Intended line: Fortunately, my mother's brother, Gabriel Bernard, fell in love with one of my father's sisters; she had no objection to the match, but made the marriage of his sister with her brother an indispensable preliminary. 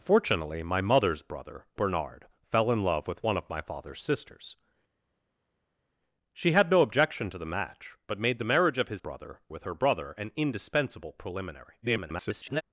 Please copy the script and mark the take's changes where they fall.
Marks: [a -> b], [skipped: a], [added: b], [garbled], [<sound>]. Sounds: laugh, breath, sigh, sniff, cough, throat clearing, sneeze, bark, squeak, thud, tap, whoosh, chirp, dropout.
Fortunately, my mother's brother, [skipped: Gabriel] Bernard, fell in love with one of my father's sisters; she had no objection to the match, but made the marriage of his [sister -> brother] with her brother an indispensable preliminary. [garbled]